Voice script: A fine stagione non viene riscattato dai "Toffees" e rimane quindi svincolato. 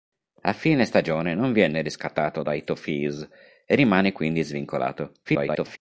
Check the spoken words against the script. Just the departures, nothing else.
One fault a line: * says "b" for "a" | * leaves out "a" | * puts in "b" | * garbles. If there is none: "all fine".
* garbles